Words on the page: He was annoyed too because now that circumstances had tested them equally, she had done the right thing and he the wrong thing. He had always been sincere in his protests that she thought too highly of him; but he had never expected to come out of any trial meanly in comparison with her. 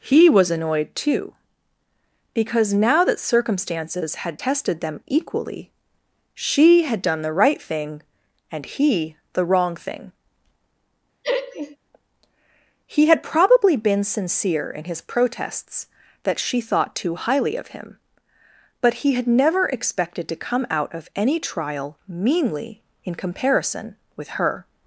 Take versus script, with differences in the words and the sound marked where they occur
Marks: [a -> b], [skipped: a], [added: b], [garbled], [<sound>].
He was annoyed too because now that circumstances had tested them equally, she had done the right thing and he the wrong thing. [laugh] He had [always -> probably] been sincere in his protests that she thought too highly of him; but he had never expected to come out of any trial meanly in comparison with her.